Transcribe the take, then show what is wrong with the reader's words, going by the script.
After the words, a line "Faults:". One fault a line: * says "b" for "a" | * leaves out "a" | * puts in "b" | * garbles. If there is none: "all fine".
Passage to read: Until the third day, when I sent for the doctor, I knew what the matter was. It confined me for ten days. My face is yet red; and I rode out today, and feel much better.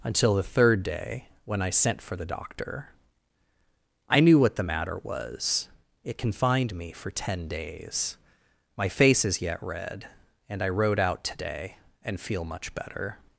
Until the third day, when I sent for the doctor, I knew what the matter was. It confined me for ten days. My face is yet red; and I rode out today, and feel much better.
Faults:
all fine